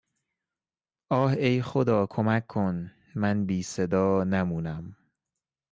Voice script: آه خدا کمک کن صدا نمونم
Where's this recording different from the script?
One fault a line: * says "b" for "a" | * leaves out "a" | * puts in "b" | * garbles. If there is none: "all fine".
* puts in "ای"
* puts in "من بی"